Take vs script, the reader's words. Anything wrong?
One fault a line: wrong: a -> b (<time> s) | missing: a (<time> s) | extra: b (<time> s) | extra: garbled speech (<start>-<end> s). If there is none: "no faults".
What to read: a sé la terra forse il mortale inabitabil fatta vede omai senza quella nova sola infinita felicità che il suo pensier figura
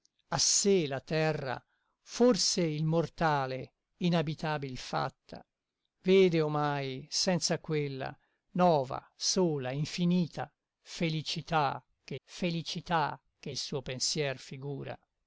extra: felicità che (12.2 s)